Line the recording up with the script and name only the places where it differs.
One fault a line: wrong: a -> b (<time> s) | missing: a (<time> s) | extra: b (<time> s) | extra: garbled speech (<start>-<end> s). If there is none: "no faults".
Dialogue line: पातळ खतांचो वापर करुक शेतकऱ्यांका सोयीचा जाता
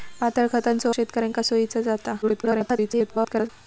missing: वापर करुक (0.9 s)
extra: garbled speech (2.2-3.5 s)